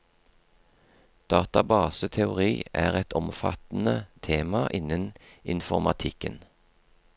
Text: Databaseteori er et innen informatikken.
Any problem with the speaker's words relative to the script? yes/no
yes